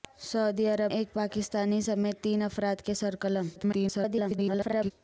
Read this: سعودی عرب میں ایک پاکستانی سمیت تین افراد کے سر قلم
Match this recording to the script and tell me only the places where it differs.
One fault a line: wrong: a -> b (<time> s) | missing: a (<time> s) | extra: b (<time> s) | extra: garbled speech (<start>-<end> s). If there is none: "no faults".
missing: میں (0.9 s)
extra: garbled speech (3.6-4.9 s)